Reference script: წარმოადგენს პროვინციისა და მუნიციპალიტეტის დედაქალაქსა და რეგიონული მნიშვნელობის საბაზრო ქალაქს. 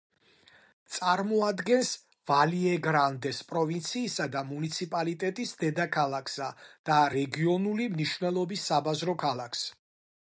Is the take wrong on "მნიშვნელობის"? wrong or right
right